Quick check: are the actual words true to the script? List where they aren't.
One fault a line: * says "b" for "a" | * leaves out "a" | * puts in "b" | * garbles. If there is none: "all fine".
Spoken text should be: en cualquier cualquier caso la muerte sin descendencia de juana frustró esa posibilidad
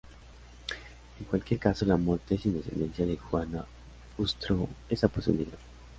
* leaves out "cualquier"